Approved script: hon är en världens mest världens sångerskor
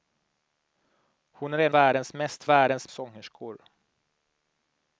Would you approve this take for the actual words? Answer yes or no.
yes